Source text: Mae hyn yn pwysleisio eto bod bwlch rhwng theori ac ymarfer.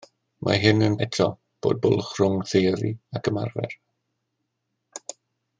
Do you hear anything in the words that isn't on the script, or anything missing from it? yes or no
yes